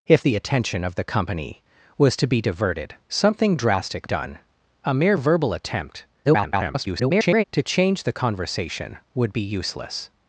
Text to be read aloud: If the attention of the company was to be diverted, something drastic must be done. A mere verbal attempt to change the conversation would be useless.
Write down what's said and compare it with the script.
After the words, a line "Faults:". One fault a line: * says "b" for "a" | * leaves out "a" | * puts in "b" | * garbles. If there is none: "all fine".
If the attention of the company was to be diverted, something drastic done. A mere verbal attempt [garbled] to change the conversation would be useless.
Faults:
* leaves out "must be"
* garbles